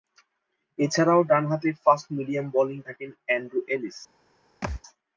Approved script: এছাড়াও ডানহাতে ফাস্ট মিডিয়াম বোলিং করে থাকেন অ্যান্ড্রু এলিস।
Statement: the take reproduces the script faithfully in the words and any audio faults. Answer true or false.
false